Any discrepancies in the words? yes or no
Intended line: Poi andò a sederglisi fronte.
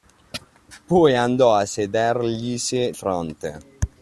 no